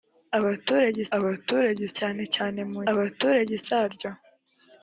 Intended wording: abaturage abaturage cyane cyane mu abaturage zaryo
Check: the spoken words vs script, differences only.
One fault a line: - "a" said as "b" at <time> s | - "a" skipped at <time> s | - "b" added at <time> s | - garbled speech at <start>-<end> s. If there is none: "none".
none